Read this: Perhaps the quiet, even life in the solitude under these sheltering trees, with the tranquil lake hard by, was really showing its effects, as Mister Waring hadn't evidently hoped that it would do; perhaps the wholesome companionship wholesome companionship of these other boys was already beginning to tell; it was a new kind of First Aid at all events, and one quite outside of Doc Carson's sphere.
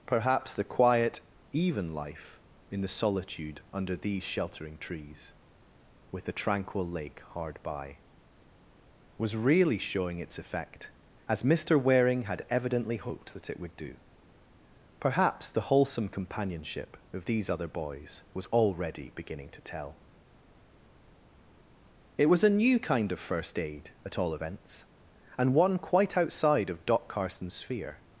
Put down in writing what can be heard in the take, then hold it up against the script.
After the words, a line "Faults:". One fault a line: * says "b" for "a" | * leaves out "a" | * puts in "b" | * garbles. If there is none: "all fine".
Perhaps the quiet, even life in the solitude under these sheltering trees, with the tranquil lake hard by, was really showing its effect, as Mister Waring had evidently hoped that it would do; perhaps the wholesome companionship of these other boys was already beginning to tell; it was a new kind of First Aid at all events, and one quite outside of Doc Carson's sphere.
Faults:
* says "effect" for "effects"
* says "had" for "hadn't"
* leaves out "wholesome companionship"